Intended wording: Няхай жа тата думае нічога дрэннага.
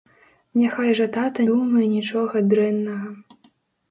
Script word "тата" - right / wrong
right